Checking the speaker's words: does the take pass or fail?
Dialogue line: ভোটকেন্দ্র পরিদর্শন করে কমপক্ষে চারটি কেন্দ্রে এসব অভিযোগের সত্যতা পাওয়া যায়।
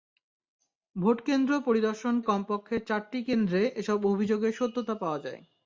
fail